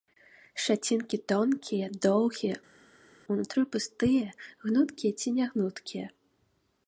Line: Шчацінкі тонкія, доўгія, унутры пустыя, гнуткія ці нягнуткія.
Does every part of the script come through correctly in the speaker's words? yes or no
yes